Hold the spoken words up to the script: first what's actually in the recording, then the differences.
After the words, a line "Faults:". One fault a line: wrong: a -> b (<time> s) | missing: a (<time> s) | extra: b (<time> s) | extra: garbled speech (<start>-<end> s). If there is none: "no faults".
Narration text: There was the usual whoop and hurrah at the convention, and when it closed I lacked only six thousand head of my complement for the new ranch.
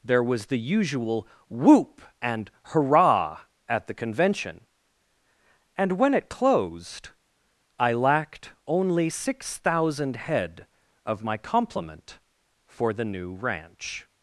There was the usual whoop and hurrah at the convention, and when it closed I lacked only six thousand head of my complement for the new ranch.
Faults:
no faults